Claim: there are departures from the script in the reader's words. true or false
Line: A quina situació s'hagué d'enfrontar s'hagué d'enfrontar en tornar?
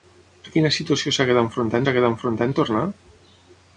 false